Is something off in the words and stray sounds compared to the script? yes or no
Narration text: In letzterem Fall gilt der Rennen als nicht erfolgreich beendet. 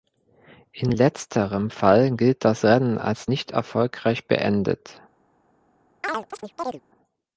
yes